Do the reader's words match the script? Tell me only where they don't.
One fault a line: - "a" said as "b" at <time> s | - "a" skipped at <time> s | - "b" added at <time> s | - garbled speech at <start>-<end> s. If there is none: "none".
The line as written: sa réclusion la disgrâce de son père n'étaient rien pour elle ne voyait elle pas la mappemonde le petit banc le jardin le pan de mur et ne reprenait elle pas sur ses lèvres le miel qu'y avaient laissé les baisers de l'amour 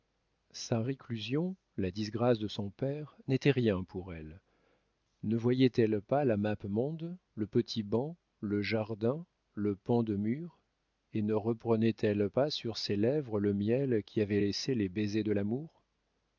none